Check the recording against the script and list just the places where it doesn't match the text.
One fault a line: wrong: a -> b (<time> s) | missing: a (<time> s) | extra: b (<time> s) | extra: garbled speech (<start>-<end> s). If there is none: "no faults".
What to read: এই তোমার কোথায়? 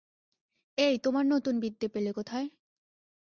extra: নতুন বিদ্যে পেলে (1.2 s)